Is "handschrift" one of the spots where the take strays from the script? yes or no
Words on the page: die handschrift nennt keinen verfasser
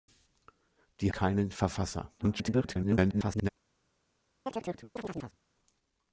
yes